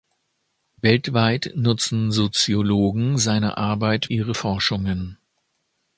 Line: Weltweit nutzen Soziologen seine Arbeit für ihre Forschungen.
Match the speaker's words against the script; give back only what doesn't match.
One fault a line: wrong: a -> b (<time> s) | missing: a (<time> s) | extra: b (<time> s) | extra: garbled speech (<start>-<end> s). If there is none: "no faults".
missing: für (4.1 s)